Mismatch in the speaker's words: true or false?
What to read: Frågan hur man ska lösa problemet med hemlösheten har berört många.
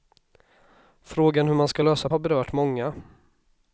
true